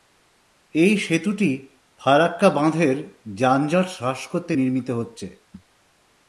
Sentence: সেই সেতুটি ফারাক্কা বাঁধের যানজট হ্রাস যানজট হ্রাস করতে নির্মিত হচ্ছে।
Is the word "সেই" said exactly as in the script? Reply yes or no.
no